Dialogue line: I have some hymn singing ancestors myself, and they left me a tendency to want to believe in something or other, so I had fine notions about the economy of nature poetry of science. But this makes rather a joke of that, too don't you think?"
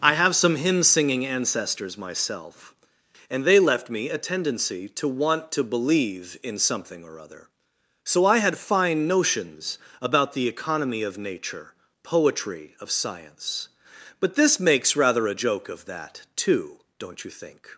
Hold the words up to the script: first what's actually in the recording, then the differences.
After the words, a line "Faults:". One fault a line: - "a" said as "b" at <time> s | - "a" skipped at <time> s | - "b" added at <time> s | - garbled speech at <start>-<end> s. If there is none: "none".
I have some hymn singing ancestors myself, and they left me a tendency to want to believe in something or other, so I had fine notions about the economy of nature poetry of science. But this makes rather a joke of that, too don't you think?"
Faults:
none